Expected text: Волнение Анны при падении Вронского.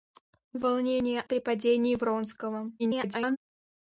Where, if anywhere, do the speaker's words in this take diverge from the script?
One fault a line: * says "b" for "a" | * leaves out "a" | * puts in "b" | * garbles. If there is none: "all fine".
* leaves out "Анны"
* garbles